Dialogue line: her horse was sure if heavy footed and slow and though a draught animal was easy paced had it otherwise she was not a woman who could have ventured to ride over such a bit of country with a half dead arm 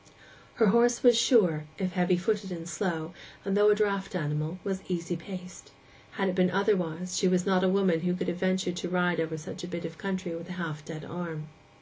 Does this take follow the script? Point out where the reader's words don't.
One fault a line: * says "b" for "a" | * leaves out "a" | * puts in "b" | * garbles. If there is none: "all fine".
* puts in "been"